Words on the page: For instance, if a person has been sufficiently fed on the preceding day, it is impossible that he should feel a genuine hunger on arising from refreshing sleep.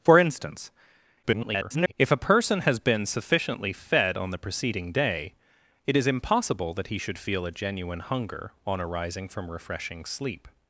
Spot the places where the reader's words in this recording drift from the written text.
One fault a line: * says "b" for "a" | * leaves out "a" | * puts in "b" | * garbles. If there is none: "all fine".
* garbles